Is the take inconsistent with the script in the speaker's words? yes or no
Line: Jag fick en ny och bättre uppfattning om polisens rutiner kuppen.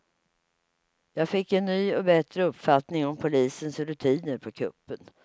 yes